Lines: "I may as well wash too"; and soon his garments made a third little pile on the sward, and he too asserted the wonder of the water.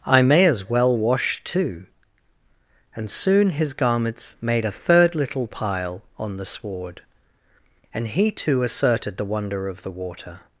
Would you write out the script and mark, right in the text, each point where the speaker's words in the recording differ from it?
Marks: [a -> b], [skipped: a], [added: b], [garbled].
"I may as well wash too"; and soon his garments made a third little pile on the sward, and he too asserted the wonder of the water.